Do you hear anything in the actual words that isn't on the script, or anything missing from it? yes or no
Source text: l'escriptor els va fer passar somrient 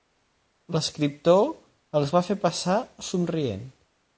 no